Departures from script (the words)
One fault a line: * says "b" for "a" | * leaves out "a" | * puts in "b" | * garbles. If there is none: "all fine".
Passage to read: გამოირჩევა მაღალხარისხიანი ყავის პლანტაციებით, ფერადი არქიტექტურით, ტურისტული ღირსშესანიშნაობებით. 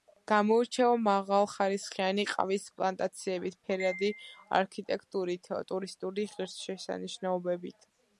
all fine